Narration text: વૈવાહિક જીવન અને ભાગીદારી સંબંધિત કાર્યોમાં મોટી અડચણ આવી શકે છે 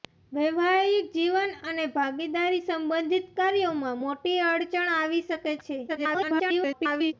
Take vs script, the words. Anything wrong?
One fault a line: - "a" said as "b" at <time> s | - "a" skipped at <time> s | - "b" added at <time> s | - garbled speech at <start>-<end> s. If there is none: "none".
- garbled speech at 5.9-7.1 s